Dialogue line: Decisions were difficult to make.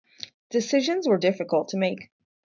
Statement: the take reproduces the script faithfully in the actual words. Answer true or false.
true